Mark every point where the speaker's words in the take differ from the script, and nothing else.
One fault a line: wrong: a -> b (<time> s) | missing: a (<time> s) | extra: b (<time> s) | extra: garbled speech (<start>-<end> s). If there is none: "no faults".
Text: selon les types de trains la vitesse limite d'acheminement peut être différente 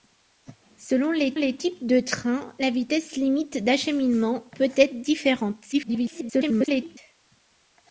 extra: les (1.3 s)
extra: garbled speech (5.7-7.0 s)